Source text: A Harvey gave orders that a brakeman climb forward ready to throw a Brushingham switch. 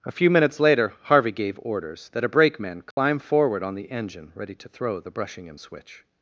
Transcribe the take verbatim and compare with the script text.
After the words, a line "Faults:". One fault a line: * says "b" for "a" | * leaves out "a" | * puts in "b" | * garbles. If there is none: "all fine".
A few minutes later Harvey gave orders that a brakeman climb forward on the engine ready to throw the Brushingham switch.
Faults:
* puts in "few minutes later"
* puts in "on the engine"
* says "the" for "a"